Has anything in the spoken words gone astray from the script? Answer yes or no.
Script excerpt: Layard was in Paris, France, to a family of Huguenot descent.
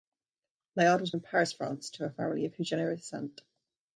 no